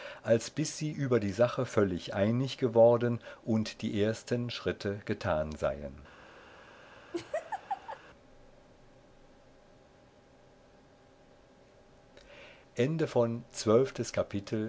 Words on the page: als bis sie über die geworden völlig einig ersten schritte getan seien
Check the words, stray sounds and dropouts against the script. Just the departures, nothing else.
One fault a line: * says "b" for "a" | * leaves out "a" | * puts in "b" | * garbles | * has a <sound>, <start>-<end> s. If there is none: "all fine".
* says "sache" for "geworden"
* puts in "geworden und die"
* has a laugh, 7.1-8.0 s